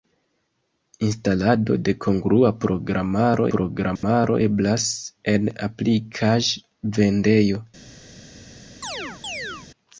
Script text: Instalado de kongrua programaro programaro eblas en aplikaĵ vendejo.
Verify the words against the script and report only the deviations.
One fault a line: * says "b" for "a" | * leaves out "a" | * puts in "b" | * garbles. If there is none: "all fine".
all fine